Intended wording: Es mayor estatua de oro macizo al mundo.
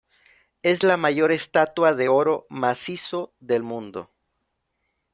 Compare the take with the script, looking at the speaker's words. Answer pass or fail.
fail